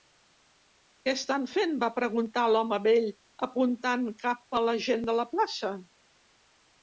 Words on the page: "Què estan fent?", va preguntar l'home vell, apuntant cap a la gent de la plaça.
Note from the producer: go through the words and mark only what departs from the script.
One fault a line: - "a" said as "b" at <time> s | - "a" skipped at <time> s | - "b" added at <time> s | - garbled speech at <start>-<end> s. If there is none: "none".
none